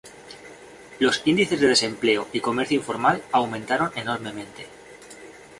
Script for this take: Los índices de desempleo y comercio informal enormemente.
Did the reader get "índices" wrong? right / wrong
right